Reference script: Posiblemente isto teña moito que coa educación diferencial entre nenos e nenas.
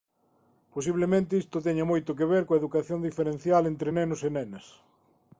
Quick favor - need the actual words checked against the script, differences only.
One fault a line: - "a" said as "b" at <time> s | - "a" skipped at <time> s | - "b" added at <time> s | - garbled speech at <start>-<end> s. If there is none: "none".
- "ver" added at 2.3 s